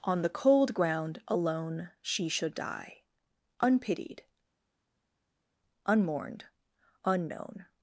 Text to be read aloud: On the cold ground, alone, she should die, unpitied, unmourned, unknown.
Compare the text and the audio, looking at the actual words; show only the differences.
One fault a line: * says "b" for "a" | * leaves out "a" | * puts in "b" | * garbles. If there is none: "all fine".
all fine